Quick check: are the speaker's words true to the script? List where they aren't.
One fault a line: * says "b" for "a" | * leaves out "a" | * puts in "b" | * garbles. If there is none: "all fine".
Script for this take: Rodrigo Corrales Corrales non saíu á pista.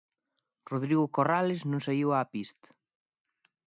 * leaves out "Corrales"